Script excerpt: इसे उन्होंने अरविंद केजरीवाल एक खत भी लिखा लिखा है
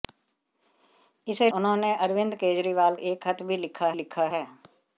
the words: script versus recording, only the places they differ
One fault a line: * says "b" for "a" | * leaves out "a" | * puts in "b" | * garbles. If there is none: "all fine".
all fine